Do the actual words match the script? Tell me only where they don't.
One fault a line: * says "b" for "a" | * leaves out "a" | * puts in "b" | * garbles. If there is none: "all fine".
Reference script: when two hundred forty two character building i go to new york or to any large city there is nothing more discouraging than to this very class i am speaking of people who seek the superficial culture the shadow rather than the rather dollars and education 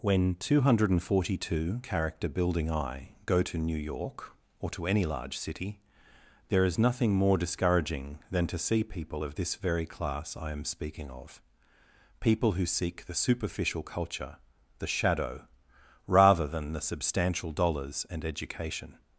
* puts in "see people of"
* says "substantial" for "rather"